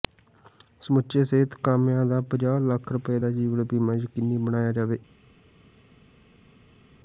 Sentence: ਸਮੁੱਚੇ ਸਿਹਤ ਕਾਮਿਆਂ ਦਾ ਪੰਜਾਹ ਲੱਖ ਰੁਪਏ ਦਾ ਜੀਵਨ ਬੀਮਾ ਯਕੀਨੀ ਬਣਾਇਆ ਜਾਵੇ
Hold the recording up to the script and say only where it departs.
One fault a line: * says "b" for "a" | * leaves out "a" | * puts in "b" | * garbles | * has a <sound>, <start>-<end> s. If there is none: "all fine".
all fine